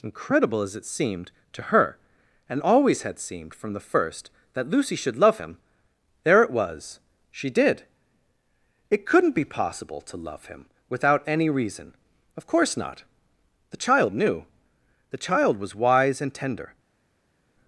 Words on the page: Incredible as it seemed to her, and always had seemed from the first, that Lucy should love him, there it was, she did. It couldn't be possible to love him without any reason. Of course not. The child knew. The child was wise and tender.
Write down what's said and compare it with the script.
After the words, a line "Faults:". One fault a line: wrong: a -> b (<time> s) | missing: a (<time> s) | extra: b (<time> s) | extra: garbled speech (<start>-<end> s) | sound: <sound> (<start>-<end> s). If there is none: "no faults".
Incredible as it seemed to her, and always had seemed from the first, that Lucy should love him, there it was, she did. It couldn't be possible to love him without any reason. Of course not. The child knew. The child was wise and tender.
Faults:
no faults